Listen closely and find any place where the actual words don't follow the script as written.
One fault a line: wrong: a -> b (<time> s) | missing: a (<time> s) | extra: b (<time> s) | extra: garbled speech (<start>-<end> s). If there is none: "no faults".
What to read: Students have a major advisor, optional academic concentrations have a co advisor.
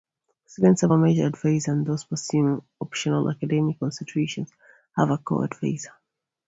extra: and those pursuing (1.7 s)